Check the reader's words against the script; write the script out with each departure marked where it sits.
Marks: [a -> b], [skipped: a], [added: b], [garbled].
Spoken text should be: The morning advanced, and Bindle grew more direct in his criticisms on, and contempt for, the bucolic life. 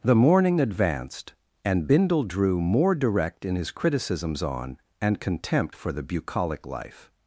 The morning advanced, and Bindle [grew -> drew] more direct in his criticisms on, and contempt for, the bucolic life.